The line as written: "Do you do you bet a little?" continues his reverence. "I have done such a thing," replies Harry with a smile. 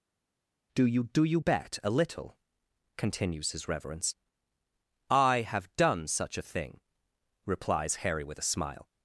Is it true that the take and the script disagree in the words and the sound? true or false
false